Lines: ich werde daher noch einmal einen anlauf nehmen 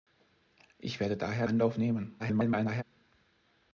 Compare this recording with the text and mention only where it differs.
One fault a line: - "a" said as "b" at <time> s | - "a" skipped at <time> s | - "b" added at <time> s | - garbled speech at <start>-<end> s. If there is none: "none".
- "noch einmal einen" skipped at 1.4 s
- garbled speech at 2.2-2.8 s